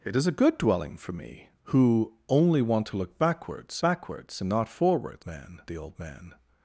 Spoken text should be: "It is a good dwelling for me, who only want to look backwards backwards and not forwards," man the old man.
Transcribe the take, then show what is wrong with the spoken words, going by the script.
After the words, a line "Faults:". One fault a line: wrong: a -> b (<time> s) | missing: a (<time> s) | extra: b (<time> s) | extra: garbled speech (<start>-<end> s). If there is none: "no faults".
"It is a good dwelling for me, who only want to look backwards backwards and not forwards," man the old man.
Faults:
no faults